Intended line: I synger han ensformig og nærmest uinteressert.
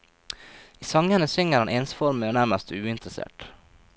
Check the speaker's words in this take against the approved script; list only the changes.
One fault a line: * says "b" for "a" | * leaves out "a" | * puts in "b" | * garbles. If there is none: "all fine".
* puts in "sangene"